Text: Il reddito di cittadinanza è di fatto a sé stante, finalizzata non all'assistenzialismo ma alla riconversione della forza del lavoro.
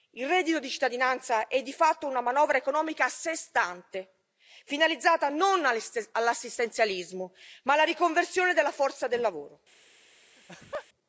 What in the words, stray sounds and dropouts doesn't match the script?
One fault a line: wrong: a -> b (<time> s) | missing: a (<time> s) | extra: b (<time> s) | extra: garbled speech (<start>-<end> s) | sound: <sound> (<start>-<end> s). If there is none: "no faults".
extra: una manovra economica (2.1 s)
sound: laugh (10.4-10.9 s)